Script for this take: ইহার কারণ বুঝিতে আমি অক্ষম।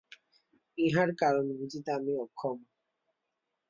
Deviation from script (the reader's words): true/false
false